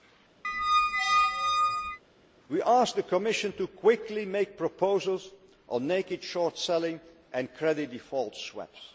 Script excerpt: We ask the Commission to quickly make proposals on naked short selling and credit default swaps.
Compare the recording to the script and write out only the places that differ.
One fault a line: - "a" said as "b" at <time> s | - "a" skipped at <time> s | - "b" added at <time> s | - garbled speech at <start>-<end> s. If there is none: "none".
none